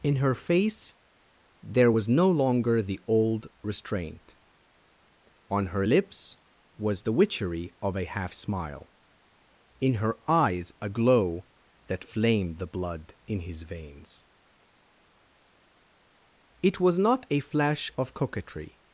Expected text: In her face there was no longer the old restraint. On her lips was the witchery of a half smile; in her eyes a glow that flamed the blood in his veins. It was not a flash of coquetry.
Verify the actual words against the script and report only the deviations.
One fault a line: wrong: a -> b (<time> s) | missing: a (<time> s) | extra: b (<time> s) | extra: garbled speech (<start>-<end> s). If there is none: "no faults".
no faults